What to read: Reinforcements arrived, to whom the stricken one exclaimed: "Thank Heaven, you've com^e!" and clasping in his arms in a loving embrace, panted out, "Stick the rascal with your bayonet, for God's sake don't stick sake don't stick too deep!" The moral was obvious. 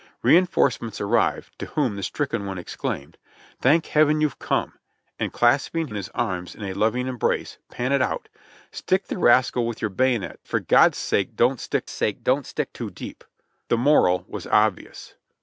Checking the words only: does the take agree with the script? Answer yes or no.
yes